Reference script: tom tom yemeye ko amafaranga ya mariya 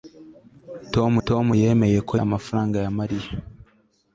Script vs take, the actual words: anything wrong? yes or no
no